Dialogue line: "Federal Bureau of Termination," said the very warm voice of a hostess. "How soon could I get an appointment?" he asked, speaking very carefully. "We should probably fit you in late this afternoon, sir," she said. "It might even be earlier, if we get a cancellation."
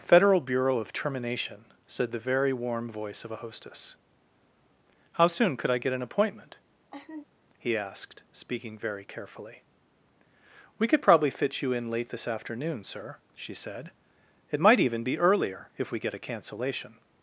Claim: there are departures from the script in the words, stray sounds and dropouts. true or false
true